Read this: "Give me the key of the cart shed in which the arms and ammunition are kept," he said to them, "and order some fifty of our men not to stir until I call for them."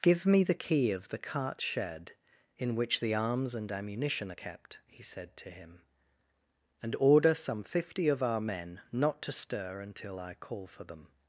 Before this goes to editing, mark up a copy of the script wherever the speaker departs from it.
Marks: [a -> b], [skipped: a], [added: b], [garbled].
"Give me the key of the cart shed in which the arms and ammunition are kept," he said to [them, -> him] "and order some fifty of our men not to stir until I call for them."